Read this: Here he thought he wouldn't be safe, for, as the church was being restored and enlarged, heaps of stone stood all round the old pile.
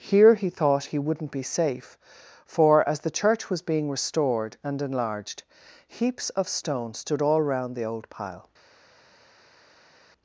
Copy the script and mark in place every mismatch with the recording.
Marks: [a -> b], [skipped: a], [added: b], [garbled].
Here he thought he wouldn't be safe, for, as the church was being restored and enlarged, heaps of stone stood all round the old pile.